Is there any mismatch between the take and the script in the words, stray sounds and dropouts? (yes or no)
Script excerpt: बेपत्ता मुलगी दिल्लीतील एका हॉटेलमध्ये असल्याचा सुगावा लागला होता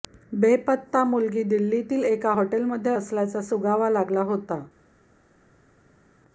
no